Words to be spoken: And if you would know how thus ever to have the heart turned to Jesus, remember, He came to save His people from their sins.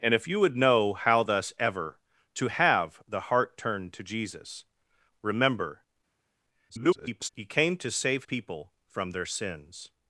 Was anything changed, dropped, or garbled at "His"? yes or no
yes